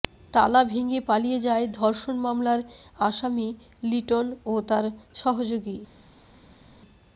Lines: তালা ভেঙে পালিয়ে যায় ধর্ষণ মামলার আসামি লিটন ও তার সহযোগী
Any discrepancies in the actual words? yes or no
no